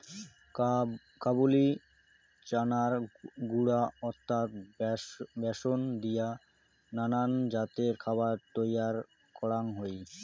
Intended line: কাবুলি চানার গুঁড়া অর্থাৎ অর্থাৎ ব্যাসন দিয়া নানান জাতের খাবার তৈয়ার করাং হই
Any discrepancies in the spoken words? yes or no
yes